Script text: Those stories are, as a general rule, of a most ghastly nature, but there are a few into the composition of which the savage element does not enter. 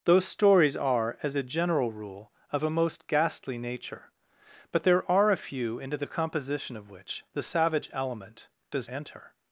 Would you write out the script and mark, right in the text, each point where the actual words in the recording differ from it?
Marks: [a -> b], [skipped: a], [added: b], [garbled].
Those stories are, as a general rule, of a most ghastly nature, but there are a few into the composition of which the savage element does [skipped: not] enter.